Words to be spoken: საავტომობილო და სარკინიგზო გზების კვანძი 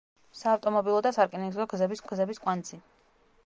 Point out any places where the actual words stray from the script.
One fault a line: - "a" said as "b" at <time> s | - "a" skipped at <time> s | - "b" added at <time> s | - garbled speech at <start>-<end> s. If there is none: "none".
- "გზების" added at 2.1 s